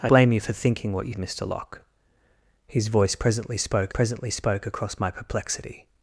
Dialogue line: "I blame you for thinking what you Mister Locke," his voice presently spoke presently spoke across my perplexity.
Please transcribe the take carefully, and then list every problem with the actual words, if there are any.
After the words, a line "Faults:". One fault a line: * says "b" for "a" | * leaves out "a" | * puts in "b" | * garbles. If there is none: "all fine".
"I blame you for thinking what you Mister Locke," his voice presently spoke presently spoke across my perplexity.
Faults:
all fine